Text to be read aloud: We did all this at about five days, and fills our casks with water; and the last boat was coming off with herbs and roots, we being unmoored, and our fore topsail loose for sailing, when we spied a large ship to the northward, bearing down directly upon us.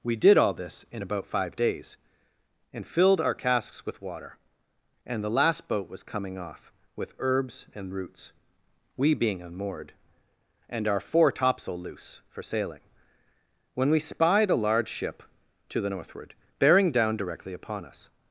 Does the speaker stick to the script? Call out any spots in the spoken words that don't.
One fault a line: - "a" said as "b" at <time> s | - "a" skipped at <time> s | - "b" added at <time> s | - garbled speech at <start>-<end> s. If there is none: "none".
- "at" said as "in" at 0.9 s
- "fills" said as "filled" at 2.9 s